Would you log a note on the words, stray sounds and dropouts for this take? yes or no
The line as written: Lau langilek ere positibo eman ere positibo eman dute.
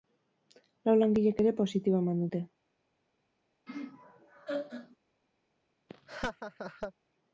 yes